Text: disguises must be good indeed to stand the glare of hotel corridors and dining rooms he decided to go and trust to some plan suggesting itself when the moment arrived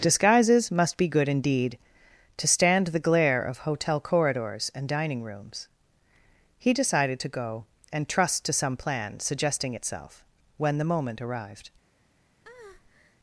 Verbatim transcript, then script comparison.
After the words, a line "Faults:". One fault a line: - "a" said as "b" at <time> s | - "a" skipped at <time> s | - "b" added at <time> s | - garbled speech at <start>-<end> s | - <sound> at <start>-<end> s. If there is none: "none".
disguises must be good indeed to stand the glare of hotel corridors and dining rooms he decided to go and trust to some plan suggesting itself when the moment arrived
Faults:
- breath at 12.4-13.2 s